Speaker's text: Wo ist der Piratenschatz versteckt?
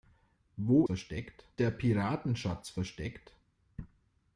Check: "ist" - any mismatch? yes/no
yes